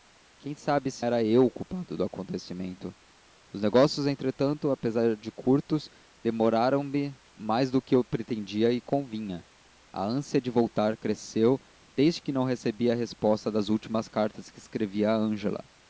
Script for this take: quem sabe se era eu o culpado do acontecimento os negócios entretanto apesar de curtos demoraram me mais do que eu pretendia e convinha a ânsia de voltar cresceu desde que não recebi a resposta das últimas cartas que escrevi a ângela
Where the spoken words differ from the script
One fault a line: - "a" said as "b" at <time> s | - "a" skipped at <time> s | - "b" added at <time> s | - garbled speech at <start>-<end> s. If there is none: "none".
none